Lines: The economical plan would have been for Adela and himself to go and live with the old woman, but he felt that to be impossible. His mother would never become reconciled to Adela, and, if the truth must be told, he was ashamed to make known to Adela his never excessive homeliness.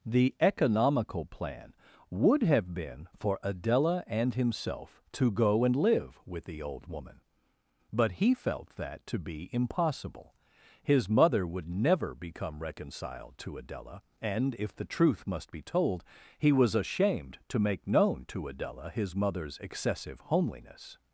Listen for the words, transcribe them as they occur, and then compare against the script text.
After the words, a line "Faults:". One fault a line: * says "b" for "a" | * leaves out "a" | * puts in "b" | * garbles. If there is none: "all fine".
The economical plan would have been for Adela and himself to go and live with the old woman, but he felt that to be impossible. His mother would never become reconciled to Adela, and, if the truth must be told, he was ashamed to make known to Adela his mother's excessive homeliness.
Faults:
* says "mother's" for "never"